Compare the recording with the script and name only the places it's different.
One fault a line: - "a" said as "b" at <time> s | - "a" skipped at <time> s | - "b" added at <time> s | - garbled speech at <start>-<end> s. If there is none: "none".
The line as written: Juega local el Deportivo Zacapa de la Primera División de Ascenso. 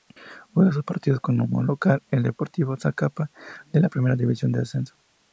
- "sus partidos como" added at 0.7 s